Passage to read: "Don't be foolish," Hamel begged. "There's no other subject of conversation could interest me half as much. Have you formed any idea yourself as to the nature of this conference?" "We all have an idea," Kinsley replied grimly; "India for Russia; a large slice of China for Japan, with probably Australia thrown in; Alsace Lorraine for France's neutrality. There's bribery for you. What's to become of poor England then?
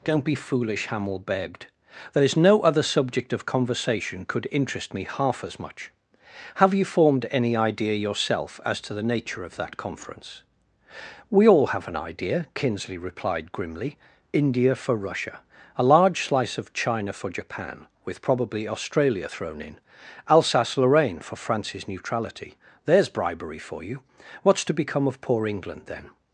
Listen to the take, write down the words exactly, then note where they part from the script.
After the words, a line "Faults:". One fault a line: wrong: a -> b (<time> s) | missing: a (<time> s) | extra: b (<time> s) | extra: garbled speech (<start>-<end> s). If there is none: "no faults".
"Don't be foolish," Hamel begged. "There's no other subject of conversation could interest me half as much. Have you formed any idea yourself as to the nature of that conference?" "We all have an idea," Kinsley replied grimly; "India for Russia; a large slice of China for Japan, with probably Australia thrown in; Alsace Lorraine for France's neutrality. There's bribery for you. What's to become of poor England then?
Faults:
wrong: this -> that (9.6 s)